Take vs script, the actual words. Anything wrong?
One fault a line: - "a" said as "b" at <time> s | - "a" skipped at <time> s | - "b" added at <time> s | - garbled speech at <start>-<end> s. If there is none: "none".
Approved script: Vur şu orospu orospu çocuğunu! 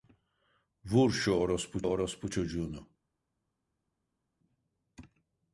none